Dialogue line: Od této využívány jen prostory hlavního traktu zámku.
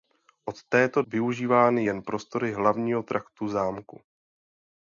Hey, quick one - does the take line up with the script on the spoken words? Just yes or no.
yes